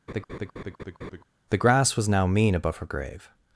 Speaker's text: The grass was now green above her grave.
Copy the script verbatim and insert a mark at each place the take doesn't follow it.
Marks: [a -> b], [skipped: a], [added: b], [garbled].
The grass was now [green -> mean] above her grave.